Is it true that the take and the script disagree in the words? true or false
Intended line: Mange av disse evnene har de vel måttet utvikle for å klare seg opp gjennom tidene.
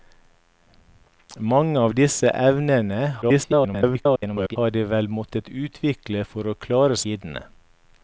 true